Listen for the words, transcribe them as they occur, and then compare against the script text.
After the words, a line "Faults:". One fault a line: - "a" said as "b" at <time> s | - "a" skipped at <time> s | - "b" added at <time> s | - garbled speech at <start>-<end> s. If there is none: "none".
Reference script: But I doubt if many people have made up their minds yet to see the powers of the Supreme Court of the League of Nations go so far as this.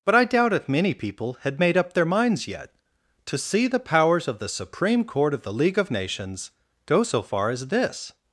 But I doubt if many people had made up their minds yet to see the powers of the Supreme Court of the League of Nations go so far as this.
Faults:
- "have" said as "had" at 1.4 s